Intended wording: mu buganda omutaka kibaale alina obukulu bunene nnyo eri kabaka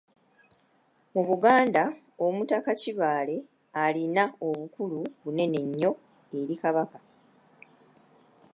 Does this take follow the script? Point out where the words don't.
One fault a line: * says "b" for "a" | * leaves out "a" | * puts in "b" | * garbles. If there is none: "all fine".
all fine